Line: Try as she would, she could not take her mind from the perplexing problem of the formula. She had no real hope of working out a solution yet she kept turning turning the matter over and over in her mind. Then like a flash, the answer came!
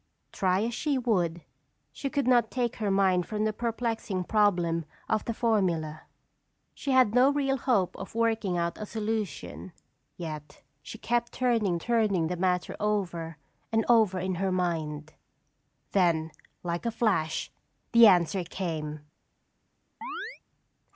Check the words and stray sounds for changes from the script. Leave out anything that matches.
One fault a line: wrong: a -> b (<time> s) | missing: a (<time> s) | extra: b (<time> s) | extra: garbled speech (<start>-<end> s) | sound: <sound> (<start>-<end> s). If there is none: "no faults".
sound: chirp (20.0-20.4 s)